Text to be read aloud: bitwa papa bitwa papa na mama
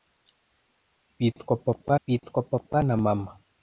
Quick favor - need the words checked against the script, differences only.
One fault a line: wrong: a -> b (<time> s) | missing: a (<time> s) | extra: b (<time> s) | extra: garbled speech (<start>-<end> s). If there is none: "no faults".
no faults